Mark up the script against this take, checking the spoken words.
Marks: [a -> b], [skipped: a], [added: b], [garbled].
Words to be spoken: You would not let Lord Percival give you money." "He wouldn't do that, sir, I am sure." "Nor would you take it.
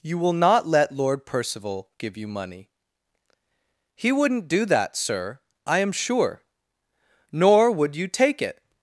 You [would -> will] not let Lord Percival give you money." "He wouldn't do that, sir, I am sure." "Nor would you take it.